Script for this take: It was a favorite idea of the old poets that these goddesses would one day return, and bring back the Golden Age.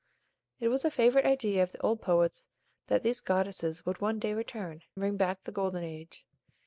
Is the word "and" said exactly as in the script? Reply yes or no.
no